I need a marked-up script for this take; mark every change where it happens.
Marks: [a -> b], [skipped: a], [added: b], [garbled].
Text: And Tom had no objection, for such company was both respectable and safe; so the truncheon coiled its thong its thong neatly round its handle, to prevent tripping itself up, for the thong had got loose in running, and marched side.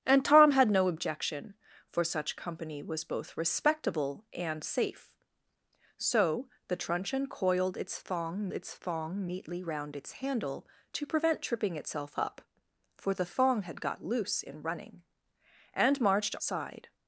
And Tom had no objection, for such company was both respectable and safe; so the truncheon coiled its thong its thong neatly round its handle, to prevent tripping itself up, for the thong had got loose in running, and marched side.